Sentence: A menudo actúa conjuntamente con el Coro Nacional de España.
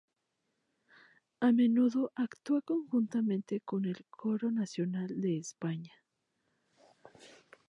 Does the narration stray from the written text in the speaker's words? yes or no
no